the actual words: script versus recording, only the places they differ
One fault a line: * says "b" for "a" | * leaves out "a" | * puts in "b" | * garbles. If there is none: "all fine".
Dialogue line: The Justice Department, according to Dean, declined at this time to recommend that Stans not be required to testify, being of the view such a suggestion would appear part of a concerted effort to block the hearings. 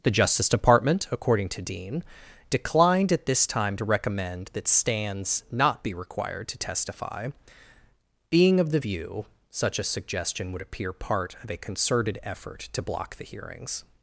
all fine